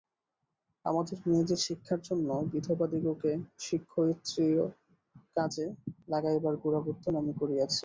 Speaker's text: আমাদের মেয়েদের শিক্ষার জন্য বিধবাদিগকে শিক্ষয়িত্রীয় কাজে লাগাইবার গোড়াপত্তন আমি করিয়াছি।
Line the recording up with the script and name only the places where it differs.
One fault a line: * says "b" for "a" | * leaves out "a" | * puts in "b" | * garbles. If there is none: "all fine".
all fine